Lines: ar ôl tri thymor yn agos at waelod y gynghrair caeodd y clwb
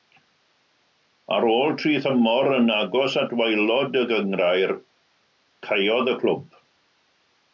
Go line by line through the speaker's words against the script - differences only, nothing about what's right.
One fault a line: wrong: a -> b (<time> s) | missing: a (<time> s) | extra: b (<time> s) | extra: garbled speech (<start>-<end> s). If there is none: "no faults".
no faults